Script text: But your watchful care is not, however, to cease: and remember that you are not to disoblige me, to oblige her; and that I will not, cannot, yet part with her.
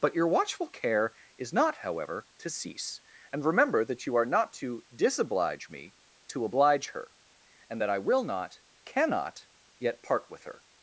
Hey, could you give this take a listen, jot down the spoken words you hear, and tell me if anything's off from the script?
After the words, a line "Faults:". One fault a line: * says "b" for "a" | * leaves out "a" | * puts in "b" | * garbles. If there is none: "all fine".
But your watchful care is not, however, to cease: and remember that you are not to disoblige me, to oblige her; and that I will not, cannot, yet part with her.
Faults:
all fine